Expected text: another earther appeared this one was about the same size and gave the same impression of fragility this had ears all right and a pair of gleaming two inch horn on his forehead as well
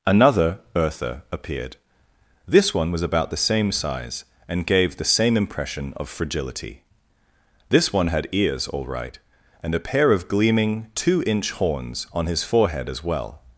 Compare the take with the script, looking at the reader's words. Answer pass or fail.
fail